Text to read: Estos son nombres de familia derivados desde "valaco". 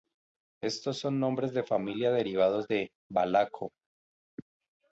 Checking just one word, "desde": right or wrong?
wrong